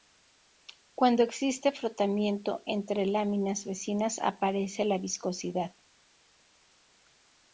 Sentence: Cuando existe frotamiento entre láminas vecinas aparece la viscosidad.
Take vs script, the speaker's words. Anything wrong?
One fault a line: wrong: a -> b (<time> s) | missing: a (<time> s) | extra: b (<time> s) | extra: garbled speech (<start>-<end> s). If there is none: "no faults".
no faults